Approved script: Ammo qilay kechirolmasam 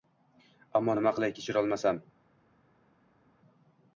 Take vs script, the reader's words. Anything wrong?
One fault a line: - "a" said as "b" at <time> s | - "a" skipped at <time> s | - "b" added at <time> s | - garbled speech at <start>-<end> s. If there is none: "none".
- "nima" added at 1.0 s